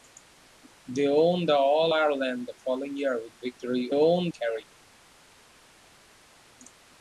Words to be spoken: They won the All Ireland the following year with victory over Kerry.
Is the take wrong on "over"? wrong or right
wrong